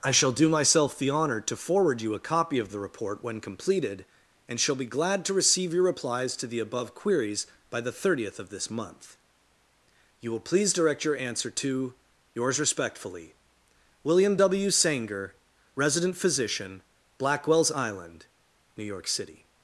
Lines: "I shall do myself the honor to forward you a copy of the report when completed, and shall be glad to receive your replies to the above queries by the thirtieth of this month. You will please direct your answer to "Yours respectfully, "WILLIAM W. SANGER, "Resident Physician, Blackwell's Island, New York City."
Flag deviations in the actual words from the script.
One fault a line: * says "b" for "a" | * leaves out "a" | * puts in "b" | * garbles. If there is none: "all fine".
all fine